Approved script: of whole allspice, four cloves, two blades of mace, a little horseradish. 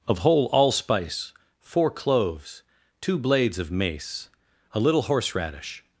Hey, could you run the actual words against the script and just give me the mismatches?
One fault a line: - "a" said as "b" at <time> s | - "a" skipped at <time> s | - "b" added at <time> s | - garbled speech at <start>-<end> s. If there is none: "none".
none